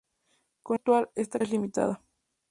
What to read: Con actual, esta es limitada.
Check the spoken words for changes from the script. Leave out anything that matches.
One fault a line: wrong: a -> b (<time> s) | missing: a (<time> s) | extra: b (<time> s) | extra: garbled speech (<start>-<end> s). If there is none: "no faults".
no faults